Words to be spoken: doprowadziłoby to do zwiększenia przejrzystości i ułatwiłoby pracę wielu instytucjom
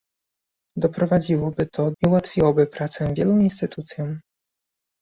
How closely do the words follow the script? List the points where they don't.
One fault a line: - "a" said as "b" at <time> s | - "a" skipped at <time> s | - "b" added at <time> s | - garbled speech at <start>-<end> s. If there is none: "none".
- "do zwiększenia przejrzystości" skipped at 1.9 s